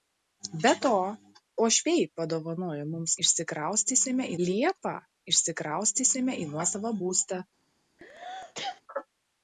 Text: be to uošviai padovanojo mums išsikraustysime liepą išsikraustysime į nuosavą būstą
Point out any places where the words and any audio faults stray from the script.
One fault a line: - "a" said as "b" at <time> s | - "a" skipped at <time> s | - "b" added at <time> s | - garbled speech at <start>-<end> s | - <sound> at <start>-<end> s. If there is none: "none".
- sneeze at 8.0-8.8 s